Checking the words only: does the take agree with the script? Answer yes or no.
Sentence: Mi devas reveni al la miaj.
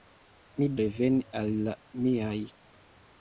no